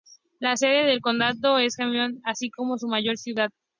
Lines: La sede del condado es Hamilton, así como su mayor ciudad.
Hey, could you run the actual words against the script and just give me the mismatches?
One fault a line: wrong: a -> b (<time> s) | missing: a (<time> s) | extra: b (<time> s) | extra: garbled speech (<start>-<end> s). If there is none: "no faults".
no faults